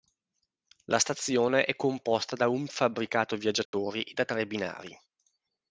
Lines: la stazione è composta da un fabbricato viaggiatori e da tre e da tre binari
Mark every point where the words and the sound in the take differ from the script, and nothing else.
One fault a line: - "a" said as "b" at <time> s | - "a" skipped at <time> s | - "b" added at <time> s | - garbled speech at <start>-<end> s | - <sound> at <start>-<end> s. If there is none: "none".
- dropout at 3.7-3.7 s
- "e da tre" skipped at 4.5 s